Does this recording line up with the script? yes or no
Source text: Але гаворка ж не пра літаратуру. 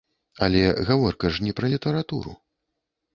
yes